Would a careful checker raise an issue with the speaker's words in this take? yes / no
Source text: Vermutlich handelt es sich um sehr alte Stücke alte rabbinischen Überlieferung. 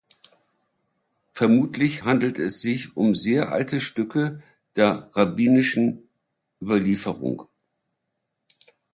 yes